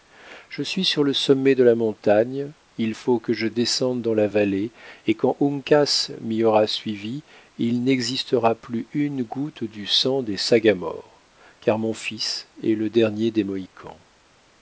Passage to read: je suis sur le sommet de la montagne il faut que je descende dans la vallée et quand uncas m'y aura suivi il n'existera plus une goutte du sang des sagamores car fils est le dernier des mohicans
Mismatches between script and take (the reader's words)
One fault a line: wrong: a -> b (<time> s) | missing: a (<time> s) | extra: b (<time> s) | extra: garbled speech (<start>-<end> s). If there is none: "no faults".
extra: mon (11.8 s)